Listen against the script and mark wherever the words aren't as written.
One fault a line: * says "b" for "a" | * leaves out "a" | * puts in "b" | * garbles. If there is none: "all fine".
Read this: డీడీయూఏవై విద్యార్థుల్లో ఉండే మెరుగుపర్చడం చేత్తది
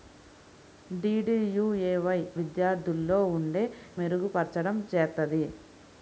all fine